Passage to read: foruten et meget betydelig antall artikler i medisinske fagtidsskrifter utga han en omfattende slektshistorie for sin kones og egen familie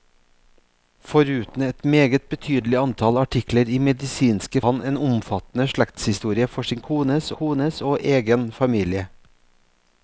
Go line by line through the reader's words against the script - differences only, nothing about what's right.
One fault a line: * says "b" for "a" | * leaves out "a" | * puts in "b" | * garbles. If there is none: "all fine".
* leaves out "fagtidsskrifter utga"
* puts in "kones"